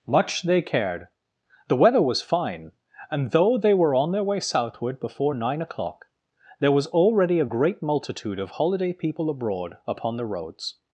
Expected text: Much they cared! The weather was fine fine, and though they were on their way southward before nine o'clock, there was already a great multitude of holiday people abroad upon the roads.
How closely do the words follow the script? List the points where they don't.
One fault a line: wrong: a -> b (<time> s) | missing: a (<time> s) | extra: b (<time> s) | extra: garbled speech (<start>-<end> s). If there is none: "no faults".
missing: fine (2.7 s)